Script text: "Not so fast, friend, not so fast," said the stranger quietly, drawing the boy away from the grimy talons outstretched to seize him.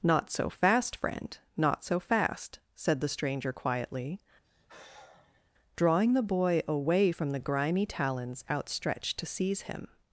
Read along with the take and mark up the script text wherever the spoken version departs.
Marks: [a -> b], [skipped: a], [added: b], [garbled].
"Not so fast, friend, not so fast," said the stranger quietly, drawing the boy away from the grimy talons outstretched to seize him.